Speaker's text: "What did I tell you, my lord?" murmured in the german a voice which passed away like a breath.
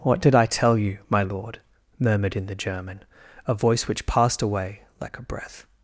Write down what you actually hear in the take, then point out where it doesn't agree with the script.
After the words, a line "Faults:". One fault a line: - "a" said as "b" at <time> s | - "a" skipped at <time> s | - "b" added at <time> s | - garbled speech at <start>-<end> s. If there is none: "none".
"What did I tell you, my lord?" murmured in the german a voice which passed away like a breath.
Faults:
none